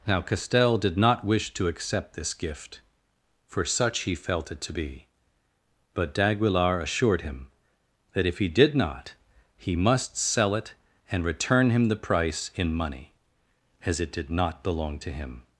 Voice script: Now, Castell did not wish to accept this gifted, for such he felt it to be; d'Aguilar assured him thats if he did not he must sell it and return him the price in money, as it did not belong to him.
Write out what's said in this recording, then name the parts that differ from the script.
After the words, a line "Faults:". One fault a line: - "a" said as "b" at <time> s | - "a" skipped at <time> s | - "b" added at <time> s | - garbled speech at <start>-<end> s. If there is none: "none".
Now, Castell did not wish to accept this gift, for such he felt it to be; but d'Aguilar assured him that if he did not he must sell it and return him the price in money, as it did not belong to him.
Faults:
- "gifted" said as "gift" at 2.3 s
- "but" added at 5.9 s
- "thats" said as "that" at 8.1 s